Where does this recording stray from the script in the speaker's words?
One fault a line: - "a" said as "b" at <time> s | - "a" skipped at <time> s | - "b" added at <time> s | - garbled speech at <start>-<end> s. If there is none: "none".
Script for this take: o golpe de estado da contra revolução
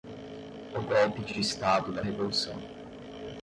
- "de" added at 1.3 s
- "contra" skipped at 2.0 s